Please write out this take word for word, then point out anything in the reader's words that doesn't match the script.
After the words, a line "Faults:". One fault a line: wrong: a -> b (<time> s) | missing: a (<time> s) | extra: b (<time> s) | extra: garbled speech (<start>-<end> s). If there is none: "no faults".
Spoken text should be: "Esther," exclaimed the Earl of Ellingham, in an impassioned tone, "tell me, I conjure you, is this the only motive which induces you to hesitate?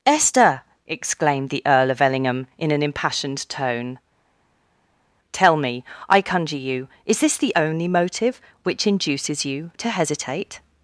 "Esther," exclaimed the Earl of Ellingham, in an impassioned tone, "tell me, I conjure you, is this the only motive which induces you to hesitate?
Faults:
no faults